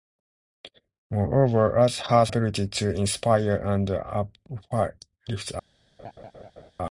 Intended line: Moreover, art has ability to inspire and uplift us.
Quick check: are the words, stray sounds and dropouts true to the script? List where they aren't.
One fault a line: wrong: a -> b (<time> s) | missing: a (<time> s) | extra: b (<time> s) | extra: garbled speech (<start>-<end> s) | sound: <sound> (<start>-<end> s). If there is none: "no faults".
sound: laugh (6.0-6.7 s)